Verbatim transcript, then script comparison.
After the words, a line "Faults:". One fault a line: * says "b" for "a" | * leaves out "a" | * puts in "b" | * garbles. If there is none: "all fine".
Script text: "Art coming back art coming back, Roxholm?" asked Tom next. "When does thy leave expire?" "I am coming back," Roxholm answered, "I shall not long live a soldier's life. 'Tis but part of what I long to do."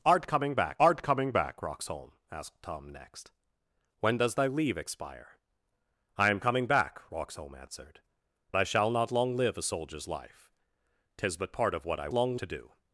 "Art coming back art coming back, Roxholm?" asked Tom next. "When does thy leave expire?" "I am coming back," Roxholm answered, "I shall not long live a soldier's life. 'Tis but part of what I long to do."
Faults:
all fine